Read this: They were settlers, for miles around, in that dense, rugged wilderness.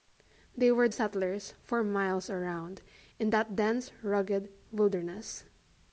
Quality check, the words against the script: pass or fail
pass